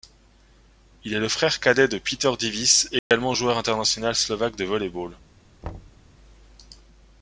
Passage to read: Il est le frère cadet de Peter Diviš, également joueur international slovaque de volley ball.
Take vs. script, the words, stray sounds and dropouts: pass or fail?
fail